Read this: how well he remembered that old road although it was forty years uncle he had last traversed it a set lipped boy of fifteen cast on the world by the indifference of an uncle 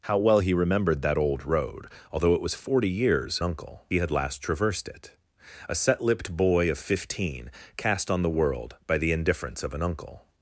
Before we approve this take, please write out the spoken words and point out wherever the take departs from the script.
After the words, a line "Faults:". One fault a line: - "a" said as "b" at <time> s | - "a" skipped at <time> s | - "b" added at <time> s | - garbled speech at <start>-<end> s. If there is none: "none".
how well he remembered that old road although it was forty years uncle he had last traversed it a set lipped boy of fifteen cast on the world by the indifference of an uncle
Faults:
none